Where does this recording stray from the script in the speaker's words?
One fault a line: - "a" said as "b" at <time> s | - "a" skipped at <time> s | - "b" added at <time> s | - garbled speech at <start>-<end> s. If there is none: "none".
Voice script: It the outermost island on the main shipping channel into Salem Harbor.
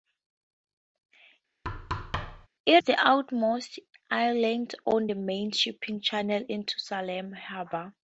none